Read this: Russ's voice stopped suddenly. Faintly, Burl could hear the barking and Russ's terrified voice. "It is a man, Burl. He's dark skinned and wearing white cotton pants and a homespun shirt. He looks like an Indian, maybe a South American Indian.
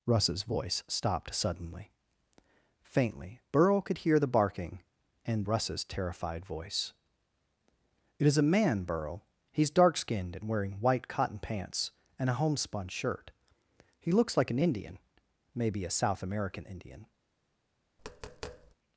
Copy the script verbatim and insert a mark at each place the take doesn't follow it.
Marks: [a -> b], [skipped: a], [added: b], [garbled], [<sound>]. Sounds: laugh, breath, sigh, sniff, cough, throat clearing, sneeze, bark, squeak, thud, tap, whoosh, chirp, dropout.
Russ's voice stopped suddenly. Faintly, Burl could hear the barking and Russ's terrified voice. "It is a man, Burl. He's dark skinned and wearing white cotton pants and a homespun shirt. He looks like an Indian, maybe a South American Indian. [tap]